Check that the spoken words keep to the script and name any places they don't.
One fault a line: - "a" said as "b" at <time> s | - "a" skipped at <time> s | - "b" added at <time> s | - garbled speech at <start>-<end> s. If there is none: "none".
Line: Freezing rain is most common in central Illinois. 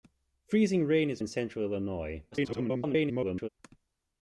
- "most common" skipped at 1.2 s
- garbled speech at 2.3-3.5 s